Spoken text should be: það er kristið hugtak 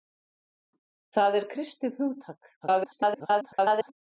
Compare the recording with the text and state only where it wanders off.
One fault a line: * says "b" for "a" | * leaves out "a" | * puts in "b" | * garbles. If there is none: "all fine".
* garbles